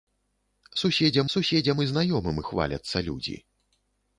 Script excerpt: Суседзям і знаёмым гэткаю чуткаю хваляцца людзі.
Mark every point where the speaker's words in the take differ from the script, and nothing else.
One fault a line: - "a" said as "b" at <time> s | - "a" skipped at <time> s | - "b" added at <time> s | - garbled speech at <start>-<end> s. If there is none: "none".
- "суседзям" added at 1.3 s
- "гэткаю чуткаю" skipped at 2.4 s